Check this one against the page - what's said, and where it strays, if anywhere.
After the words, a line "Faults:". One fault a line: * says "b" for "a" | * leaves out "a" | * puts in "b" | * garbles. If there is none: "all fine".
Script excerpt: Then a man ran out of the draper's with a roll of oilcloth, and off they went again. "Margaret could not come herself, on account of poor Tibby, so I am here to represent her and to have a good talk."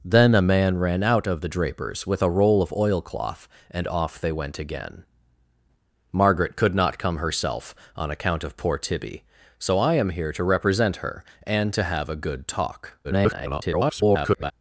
Then a man ran out of the draper's with a roll of oilcloth, and off they went again. "Margaret could not come herself, on account of poor Tibby, so I am here to represent her and to have a good talk." [garbled]
Faults:
* garbles